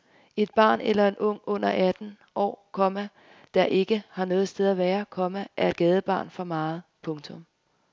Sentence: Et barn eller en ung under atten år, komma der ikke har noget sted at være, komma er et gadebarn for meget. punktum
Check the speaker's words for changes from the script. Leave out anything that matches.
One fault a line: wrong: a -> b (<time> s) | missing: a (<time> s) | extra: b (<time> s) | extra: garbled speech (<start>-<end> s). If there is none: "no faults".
no faults